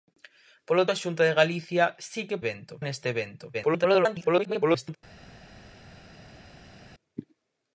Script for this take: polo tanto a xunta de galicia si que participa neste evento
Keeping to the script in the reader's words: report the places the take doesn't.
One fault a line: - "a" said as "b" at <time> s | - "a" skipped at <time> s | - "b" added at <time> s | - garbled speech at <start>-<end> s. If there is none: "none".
- "tanto" skipped at 0.8 s
- "participa" said as "evento" at 2.4 s
- garbled speech at 3.5-5.0 s